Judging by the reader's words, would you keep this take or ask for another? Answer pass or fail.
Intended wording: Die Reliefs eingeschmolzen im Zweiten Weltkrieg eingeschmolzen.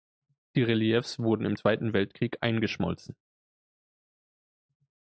fail